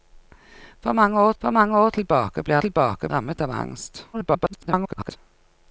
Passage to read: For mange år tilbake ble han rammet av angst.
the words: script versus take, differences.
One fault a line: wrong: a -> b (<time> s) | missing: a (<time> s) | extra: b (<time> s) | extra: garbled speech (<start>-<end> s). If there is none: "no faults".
extra: for mange år (1.4 s)
wrong: han -> tilbake (2.6 s)
extra: garbled speech (4.1-5.2 s)